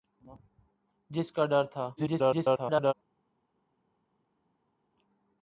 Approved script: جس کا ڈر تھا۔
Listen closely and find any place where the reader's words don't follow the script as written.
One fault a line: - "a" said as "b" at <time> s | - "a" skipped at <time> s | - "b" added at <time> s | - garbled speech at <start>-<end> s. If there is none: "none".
- garbled speech at 2.0-2.9 s